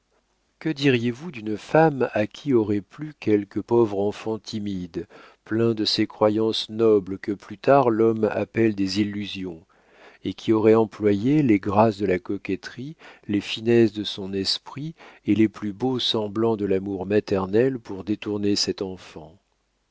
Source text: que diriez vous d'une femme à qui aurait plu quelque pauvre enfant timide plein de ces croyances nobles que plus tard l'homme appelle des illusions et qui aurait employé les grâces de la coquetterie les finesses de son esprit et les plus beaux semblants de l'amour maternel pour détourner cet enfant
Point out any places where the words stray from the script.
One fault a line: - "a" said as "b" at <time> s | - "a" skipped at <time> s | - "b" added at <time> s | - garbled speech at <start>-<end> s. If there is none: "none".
none